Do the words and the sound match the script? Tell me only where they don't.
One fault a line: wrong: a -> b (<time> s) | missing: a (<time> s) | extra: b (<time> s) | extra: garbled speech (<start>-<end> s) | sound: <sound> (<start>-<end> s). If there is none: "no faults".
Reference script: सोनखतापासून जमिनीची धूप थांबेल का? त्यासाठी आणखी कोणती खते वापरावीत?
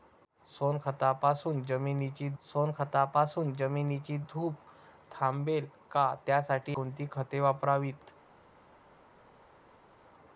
extra: सोनखतापासून जमिनीची (2.4 s)
missing: आणखी (6.8 s)